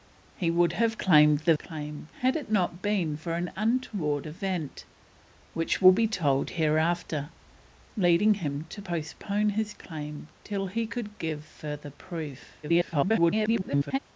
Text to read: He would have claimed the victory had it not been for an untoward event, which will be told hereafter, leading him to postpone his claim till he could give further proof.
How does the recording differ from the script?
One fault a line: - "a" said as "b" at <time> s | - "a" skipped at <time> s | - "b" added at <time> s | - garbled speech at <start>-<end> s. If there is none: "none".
- "victory" said as "claim" at 1.5 s
- garbled speech at 12.6-14.0 s